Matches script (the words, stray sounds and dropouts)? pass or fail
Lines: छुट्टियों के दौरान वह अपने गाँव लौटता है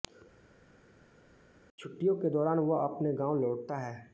pass